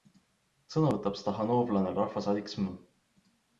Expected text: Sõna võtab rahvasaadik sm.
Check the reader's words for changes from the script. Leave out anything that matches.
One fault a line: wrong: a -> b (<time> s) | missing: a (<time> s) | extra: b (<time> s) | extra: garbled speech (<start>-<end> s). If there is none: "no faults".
extra: stahhaanovlane (1.2 s)